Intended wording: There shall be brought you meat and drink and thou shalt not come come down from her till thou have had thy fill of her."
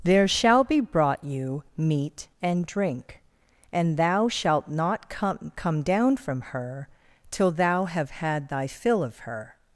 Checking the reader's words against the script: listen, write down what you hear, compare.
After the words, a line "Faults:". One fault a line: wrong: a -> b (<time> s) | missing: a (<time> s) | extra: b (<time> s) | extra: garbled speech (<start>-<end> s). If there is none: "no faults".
There shall be brought you meat and drink and thou shalt not come come down from her till thou have had thy fill of her."
Faults:
no faults